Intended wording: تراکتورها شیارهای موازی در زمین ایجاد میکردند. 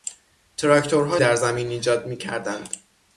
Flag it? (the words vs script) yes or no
yes